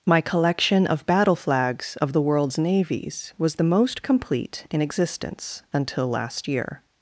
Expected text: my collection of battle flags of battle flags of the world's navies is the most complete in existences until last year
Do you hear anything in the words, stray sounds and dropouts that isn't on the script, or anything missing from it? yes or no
yes